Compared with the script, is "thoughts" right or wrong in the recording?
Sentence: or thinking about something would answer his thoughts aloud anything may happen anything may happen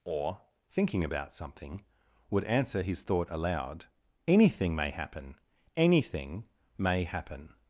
wrong